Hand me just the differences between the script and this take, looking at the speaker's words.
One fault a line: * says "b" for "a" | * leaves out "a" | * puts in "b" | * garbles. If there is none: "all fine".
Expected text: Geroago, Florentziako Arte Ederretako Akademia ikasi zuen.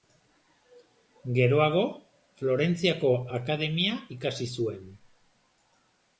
* leaves out "Arte Ederretako"